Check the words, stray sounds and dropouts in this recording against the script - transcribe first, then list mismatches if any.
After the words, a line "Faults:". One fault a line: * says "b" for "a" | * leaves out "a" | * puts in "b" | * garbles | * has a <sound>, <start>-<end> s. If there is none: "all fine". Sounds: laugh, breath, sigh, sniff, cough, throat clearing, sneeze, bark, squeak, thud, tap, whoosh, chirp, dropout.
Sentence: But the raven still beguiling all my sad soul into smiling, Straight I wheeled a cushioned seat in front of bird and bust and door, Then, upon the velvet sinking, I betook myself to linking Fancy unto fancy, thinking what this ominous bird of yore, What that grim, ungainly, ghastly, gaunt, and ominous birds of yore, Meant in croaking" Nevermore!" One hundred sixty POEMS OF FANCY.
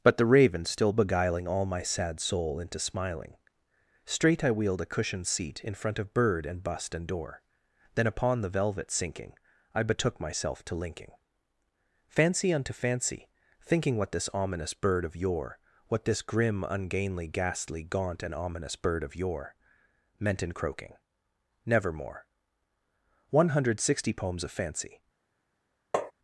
But the raven still beguiling all my sad soul into smiling, Straight I wheeled a cushioned seat in front of bird and bust and door, Then, upon the velvet sinking, I betook myself to linking Fancy unto fancy, thinking what this ominous bird of yore, What this grim, ungainly, ghastly, gaunt, and ominous bird of yore, Meant in croaking" Nevermore!" One hundred sixty POEMS OF FANCY.
Faults:
* says "this" for "that"
* says "bird" for "birds"
* has a tap, 25.9-26.1 s